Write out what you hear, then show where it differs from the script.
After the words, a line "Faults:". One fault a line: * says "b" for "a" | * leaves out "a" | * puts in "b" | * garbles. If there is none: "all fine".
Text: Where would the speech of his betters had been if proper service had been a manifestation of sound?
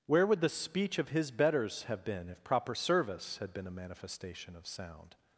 Where would the speech of his betters have been if proper service had been a manifestation of sound?
Faults:
* says "have" for "had"